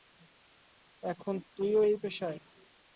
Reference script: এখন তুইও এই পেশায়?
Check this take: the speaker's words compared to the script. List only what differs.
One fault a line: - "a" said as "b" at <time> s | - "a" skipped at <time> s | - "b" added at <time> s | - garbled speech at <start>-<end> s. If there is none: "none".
none